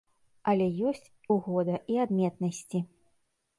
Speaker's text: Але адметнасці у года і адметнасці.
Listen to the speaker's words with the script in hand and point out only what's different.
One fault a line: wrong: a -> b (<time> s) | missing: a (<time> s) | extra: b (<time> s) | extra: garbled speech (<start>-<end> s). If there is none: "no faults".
wrong: адметнасці -> ёсць (0.9 s)